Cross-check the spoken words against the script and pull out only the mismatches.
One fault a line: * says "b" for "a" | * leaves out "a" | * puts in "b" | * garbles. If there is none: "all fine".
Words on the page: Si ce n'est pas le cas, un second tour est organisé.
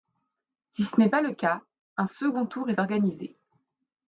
all fine